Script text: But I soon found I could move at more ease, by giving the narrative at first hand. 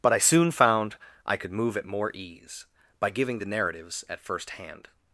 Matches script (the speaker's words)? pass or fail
fail